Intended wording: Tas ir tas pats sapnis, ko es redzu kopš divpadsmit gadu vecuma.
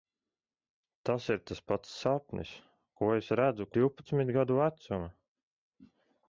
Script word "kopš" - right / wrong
wrong